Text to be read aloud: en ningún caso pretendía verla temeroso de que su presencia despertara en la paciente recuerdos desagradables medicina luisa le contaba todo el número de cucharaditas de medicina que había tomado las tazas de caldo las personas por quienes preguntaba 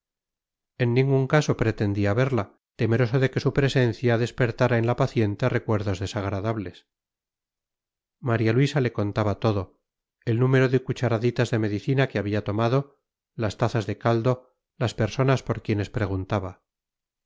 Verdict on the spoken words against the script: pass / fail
fail